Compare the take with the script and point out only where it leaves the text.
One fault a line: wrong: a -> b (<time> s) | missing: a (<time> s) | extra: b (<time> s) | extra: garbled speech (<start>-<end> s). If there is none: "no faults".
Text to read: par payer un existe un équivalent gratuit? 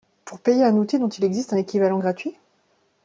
wrong: par -> pour (0.2 s)
extra: outil dont il (0.8 s)